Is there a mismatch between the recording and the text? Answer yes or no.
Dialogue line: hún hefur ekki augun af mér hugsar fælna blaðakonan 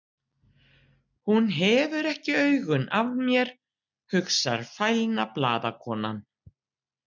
no